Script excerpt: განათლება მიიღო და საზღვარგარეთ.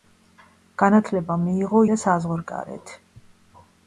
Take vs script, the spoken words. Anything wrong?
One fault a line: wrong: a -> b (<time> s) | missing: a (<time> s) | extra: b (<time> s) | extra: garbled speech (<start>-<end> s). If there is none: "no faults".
no faults